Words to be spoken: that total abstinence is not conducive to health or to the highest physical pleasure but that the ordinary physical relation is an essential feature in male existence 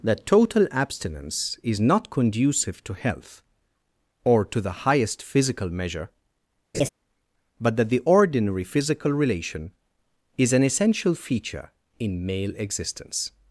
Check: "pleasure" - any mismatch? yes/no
yes